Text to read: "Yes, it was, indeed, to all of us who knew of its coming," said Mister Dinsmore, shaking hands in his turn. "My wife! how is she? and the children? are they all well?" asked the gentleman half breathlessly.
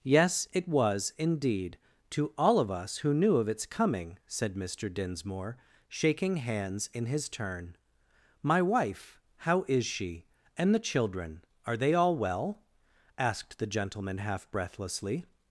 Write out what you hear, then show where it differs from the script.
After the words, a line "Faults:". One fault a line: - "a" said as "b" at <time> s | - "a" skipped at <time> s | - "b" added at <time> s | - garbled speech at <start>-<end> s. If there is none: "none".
"Yes, it was, indeed, to all of us who knew of its coming," said Mister Dinsmore, shaking hands in his turn. "My wife! how is she? and the children? are they all well?" asked the gentleman half breathlessly.
Faults:
none